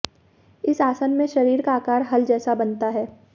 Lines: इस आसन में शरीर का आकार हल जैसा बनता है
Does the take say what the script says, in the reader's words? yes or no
yes